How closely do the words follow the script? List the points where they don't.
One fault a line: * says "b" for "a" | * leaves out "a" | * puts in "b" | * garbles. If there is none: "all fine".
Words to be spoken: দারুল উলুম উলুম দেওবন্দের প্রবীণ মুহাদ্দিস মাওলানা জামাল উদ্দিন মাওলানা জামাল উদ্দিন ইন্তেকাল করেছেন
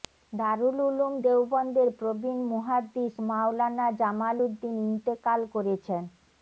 * leaves out "উলুম"
* leaves out "মাওলানা জামাল উদ্দিন"